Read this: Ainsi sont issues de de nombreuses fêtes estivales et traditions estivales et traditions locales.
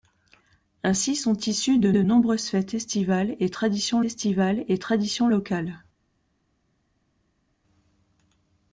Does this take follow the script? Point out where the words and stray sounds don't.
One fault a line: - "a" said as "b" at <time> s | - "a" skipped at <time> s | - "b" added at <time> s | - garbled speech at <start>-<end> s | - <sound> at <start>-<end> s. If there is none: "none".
none